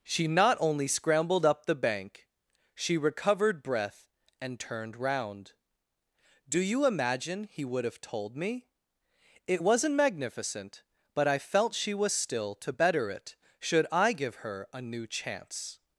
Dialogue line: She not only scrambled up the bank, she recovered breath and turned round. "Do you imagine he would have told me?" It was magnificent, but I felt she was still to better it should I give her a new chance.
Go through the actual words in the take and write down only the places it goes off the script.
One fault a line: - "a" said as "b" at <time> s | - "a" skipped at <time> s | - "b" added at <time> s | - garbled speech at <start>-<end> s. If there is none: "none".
- "was" said as "wasn't" at 9.6 s